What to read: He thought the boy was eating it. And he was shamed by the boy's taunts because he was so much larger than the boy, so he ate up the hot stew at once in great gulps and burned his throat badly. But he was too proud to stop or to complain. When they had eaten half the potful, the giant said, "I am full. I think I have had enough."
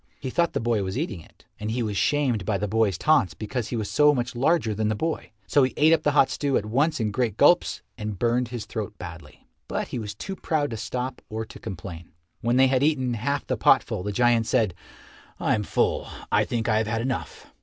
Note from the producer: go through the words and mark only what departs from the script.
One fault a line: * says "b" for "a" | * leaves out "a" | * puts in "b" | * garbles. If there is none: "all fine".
all fine